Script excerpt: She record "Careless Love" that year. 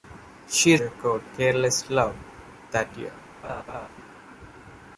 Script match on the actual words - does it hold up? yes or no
yes